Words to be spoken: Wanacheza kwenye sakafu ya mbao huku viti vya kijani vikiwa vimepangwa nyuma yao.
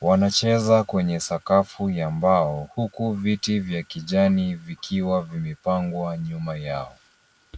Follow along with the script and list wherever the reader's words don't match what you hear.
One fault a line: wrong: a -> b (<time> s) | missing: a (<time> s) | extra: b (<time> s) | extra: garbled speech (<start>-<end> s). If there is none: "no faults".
no faults